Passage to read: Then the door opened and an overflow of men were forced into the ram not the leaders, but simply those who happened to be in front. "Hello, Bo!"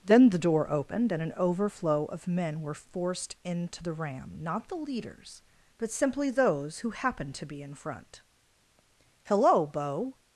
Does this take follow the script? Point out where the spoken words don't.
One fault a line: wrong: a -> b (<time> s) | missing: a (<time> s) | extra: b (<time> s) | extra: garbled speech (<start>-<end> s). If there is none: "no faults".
no faults